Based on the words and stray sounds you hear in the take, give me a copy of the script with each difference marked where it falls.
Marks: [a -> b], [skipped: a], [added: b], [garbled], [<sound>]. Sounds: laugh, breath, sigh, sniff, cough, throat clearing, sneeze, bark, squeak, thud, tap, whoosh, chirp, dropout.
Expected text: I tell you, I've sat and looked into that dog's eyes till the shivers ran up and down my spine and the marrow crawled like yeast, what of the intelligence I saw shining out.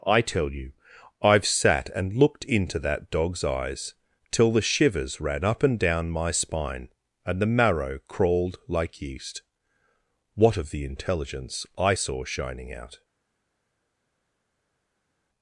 I tell you, I've sat and looked into that dog's eyes till the shivers ran up and down my spine and the marrow crawled like yeast, what of the intelligence I saw shining out.